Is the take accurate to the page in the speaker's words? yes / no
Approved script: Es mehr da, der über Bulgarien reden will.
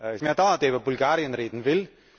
yes